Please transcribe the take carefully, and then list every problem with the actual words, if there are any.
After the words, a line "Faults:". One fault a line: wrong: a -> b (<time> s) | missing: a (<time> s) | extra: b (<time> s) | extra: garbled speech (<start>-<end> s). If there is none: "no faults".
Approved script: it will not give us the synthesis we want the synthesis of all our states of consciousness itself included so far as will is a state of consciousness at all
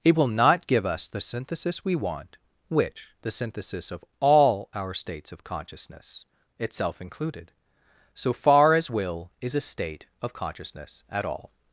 it will not give us the synthesis we want which the synthesis of all our states of consciousness itself included so far as will is a state of consciousness at all
Faults:
extra: which (2.7 s)